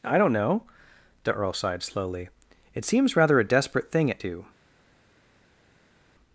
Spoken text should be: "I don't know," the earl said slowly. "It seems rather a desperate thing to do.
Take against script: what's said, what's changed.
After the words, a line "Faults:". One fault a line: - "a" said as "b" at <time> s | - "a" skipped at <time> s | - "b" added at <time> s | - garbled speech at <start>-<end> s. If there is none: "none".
"I don't know," the earl sighed slowly. "It seems rather a desperate thing at do.
Faults:
- "said" said as "sighed" at 1.5 s
- "to" said as "at" at 4.1 s